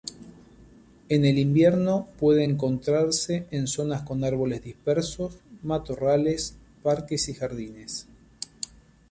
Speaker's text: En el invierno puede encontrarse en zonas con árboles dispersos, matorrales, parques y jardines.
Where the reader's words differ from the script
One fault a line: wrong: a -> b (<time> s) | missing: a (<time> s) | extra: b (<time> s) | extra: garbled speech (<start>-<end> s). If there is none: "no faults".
no faults